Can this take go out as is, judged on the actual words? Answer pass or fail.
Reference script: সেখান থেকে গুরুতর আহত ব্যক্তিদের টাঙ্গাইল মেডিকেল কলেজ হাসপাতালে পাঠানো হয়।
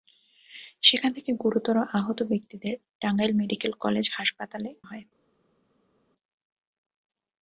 fail